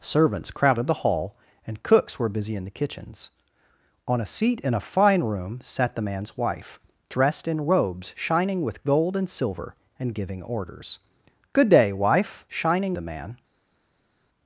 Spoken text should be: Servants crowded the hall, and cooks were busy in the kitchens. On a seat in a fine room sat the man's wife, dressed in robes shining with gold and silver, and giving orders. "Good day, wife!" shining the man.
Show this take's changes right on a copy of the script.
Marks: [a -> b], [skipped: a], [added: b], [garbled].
Servants crowded the hall, and cooks were busy in the kitchens. On a seat in a fine room sat the man's wife, dressed in robes shining with gold and silver, and giving orders. "Good day, wife!" shining the man.